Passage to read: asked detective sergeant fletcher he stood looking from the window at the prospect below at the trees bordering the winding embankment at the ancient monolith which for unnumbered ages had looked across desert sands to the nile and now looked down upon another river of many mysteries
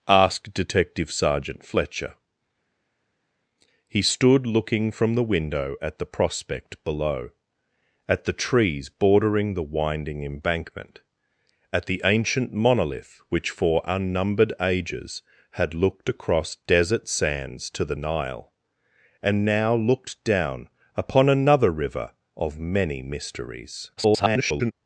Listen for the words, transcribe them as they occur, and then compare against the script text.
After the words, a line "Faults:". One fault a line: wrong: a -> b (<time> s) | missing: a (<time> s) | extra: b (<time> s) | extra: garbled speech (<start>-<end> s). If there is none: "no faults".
asked detective sergeant fletcher he stood looking from the window at the prospect below at the trees bordering the winding embankment at the ancient monolith which for unnumbered ages had looked across desert sands to the nile and now looked down upon another river of many mysteries [garbled]
Faults:
extra: garbled speech (24.0-24.7 s)